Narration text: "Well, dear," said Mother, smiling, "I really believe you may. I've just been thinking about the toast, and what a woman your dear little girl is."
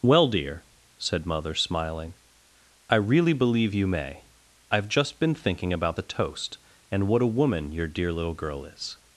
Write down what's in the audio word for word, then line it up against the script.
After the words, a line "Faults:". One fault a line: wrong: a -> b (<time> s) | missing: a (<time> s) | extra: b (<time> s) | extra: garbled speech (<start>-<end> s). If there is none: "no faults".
"Well, dear," said Mother, smiling, "I really believe you may. I've just been thinking about the toast, and what a woman your dear little girl is."
Faults:
no faults